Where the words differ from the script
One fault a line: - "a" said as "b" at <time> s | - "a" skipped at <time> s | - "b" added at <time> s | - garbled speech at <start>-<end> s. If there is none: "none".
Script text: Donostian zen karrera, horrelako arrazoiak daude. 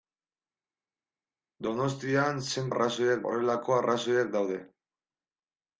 - "karrera" said as "arrazoiak" at 2.7 s